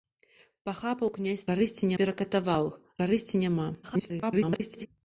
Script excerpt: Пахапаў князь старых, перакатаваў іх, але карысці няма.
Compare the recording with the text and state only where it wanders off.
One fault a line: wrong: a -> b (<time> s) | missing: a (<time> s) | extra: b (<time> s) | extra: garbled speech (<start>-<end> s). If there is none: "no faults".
wrong: старых -> карысці (1.5 s)
missing: але (2.8 s)
extra: garbled speech (3.8-4.9 s)